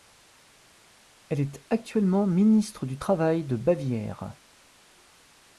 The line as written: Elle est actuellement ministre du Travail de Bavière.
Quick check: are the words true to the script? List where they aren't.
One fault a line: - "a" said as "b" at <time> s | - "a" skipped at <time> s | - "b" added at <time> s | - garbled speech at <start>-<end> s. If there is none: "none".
none